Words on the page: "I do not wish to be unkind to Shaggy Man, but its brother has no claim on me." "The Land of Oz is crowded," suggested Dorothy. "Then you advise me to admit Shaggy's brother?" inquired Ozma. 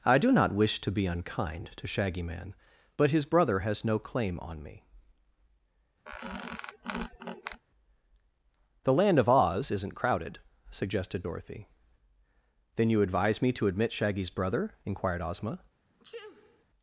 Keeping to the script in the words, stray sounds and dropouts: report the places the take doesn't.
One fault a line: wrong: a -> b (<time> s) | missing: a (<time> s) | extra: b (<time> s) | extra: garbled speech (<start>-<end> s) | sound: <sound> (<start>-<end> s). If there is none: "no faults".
wrong: its -> his (3.1 s)
sound: squeak (6.1-7.6 s)
wrong: is -> isn't (9.7 s)
sound: sneeze (15.9-16.7 s)